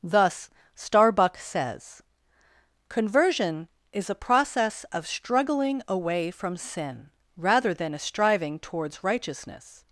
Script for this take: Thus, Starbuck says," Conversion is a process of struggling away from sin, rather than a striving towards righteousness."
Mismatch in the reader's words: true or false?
false